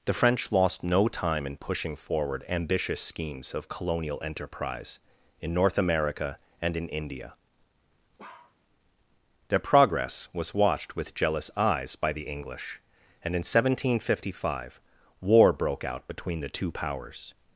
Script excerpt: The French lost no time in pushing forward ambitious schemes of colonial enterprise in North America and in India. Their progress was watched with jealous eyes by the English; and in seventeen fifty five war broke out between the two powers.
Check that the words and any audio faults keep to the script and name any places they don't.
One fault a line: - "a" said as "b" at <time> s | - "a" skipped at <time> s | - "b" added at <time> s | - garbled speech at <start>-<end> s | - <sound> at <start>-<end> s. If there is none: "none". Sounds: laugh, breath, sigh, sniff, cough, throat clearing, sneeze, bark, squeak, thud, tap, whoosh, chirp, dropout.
- bark at 8.2-8.6 s